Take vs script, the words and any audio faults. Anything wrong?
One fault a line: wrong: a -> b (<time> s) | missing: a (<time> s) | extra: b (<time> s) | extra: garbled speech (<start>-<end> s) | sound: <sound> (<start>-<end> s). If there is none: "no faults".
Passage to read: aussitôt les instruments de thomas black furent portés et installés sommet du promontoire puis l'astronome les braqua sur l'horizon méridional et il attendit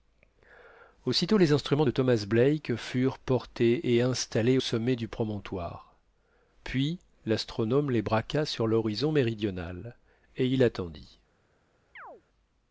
sound: chirp (12.0-12.2 s)